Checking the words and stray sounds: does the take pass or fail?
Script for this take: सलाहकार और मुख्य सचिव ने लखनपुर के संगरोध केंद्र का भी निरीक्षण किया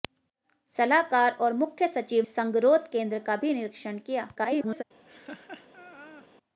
fail